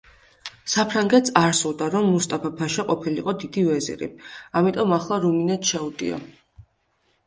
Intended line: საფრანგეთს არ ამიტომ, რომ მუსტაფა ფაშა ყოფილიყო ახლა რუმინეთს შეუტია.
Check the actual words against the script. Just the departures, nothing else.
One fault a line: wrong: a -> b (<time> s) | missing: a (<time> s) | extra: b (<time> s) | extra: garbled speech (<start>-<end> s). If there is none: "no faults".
wrong: ამიტომ -> სურდა (1.6 s)
extra: დიდი ვეზირი ამიტომ (3.4 s)